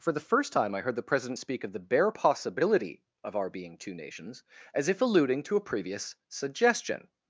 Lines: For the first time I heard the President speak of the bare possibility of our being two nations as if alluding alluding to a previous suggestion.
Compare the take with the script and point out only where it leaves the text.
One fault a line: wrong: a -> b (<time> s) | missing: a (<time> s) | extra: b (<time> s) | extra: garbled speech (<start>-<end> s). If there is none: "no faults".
missing: alluding (5.4 s)